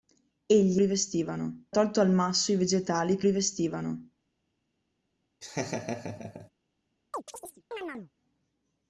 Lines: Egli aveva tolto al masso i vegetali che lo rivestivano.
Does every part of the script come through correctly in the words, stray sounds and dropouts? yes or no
no